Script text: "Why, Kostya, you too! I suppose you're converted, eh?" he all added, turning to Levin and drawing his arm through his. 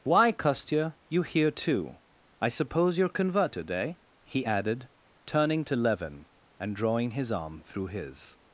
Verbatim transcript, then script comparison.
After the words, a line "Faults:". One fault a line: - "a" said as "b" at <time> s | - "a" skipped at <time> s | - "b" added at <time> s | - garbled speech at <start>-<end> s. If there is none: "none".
"Why, Kostya, you here too! I suppose you're converted, eh?" he added, turning to Levin and drawing his arm through his.
Faults:
- "here" added at 1.2 s
- "all" skipped at 4.4 s